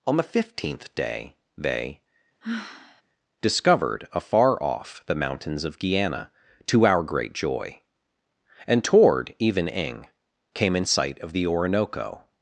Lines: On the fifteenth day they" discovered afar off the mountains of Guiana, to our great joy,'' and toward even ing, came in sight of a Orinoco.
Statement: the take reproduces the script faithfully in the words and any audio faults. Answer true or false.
false